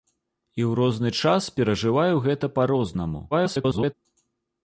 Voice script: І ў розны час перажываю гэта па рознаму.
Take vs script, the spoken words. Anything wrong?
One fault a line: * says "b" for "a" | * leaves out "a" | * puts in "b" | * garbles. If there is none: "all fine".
* garbles